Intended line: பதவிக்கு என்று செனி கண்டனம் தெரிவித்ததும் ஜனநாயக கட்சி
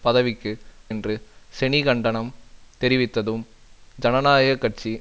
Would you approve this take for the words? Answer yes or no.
yes